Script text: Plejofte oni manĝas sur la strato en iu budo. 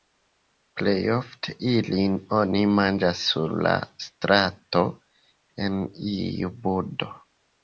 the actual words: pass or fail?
fail